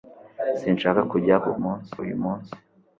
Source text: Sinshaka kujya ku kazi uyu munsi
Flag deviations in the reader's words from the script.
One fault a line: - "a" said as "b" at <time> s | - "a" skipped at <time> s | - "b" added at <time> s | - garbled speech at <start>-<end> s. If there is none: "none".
- "kazi" said as "munsi" at 1.6 s